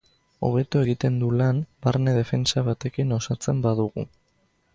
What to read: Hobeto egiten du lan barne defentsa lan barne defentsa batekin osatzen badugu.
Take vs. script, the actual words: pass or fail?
fail